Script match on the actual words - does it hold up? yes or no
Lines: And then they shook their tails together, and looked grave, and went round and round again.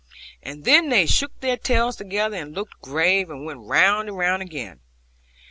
yes